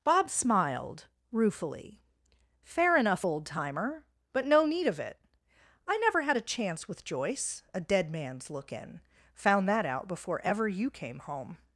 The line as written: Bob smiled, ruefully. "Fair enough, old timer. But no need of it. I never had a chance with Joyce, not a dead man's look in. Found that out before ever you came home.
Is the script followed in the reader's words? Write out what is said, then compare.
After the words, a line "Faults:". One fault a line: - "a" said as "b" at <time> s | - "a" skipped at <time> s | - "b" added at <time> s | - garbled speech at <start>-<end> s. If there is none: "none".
Bob smiled, ruefully. "Fair enough, old timer. But no need of it. I never had a chance with Joyce, a dead man's look in. Found that out before ever you came home.
Faults:
- "not" skipped at 7.6 s